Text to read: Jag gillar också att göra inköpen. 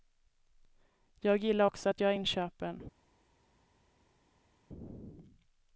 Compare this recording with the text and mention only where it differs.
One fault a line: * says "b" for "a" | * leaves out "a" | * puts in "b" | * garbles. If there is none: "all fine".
all fine